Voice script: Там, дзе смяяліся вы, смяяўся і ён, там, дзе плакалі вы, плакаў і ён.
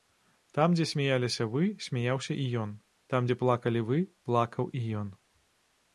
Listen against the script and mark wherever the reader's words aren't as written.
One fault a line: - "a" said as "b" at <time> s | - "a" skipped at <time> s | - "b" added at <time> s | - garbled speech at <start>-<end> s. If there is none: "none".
none